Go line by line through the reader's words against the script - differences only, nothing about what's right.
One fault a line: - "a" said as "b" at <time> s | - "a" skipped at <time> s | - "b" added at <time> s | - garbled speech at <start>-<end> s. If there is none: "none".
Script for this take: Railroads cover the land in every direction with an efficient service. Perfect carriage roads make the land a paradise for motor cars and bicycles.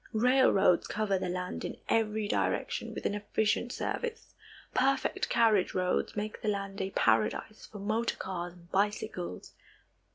none